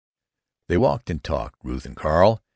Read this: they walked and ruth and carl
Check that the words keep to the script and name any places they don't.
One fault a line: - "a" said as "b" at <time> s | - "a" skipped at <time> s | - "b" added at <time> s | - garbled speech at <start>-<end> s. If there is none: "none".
- "talked" added at 1.2 s